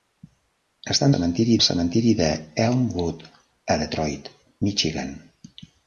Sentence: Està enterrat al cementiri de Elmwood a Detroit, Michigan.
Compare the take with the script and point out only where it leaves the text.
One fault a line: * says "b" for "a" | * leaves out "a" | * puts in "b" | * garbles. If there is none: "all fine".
* says "cementiri" for "enterrat"